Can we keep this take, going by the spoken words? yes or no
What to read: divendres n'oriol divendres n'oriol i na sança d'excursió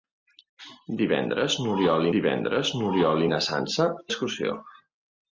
yes